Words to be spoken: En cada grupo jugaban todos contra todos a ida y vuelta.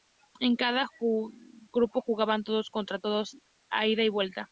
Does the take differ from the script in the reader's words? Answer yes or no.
no